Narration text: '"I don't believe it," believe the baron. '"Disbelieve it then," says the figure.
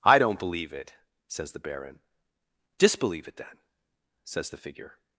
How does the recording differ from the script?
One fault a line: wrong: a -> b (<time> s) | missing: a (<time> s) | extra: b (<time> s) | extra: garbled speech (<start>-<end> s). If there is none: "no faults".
wrong: believe -> says (1.3 s)